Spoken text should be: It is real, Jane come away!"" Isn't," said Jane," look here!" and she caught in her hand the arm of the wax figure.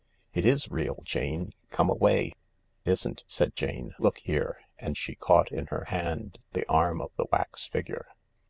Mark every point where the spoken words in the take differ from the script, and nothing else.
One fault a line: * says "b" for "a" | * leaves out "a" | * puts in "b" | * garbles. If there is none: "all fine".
all fine